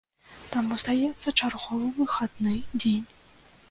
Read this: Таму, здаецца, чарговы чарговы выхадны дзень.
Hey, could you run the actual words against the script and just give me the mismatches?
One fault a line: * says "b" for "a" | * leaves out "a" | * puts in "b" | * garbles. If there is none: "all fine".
* leaves out "чарговы"